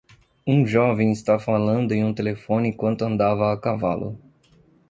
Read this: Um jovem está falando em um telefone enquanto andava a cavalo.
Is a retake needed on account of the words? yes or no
no